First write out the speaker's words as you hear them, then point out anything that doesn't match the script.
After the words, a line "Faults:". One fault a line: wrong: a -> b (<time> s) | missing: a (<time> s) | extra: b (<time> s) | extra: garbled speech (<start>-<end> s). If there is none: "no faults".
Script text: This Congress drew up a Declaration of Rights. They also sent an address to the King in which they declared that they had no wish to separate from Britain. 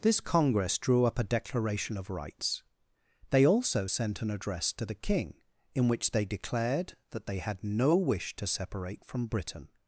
This Congress drew up a Declaration of Rights. They also sent an address to the King in which they declared that they had no wish to separate from Britain.
Faults:
no faults